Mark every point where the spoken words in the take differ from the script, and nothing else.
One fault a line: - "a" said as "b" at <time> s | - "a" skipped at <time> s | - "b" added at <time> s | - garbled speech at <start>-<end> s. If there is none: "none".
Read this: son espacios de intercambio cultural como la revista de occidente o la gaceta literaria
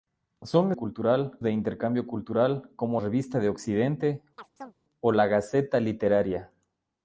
- "espacios" said as "cultural" at 0.8 s
- "la" skipped at 3.0 s